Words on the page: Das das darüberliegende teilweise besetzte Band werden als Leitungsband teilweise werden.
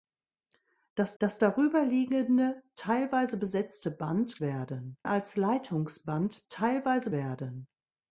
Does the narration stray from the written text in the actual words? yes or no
no